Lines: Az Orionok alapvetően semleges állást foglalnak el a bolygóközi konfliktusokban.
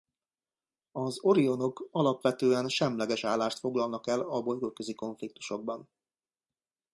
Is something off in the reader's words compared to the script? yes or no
no